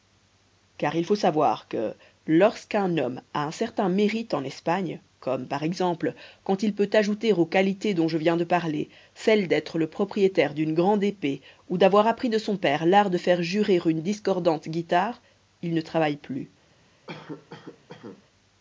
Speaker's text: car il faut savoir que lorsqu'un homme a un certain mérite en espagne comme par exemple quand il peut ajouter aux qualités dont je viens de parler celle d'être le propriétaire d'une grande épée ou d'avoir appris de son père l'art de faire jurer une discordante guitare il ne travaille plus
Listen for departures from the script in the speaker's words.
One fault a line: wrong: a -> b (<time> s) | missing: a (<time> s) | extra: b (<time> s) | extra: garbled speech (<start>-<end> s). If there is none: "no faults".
no faults